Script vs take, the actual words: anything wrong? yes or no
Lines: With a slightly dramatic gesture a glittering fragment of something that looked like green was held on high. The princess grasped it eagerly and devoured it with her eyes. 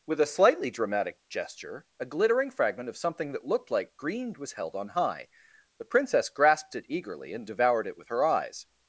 no